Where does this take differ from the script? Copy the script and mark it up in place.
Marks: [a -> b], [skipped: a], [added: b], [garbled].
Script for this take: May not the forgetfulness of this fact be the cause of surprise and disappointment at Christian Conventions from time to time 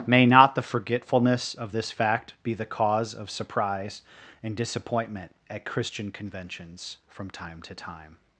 May not the forgetfulness of this fact be the cause of surprise and disappointment at Christian Conventions from time to time